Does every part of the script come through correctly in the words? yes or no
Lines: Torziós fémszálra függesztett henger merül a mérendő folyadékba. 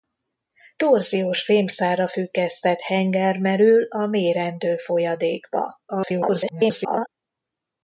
no